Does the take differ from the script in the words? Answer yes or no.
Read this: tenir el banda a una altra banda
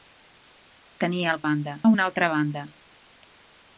no